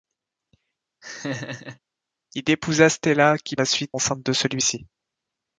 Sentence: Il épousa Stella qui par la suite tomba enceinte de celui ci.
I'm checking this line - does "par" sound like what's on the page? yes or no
no